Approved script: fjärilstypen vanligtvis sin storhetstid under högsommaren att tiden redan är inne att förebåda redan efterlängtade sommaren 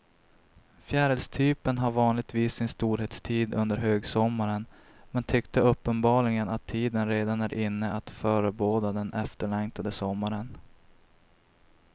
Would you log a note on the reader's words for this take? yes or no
yes